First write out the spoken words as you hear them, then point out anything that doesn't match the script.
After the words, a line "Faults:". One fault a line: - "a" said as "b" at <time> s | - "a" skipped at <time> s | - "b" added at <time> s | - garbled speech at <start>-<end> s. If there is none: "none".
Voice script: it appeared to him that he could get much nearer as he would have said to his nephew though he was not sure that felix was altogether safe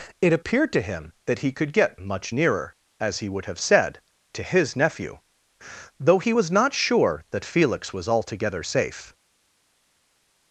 it appeared to him that he could get much nearer as he would have said to his nephew though he was not sure that felix was altogether safe
Faults:
none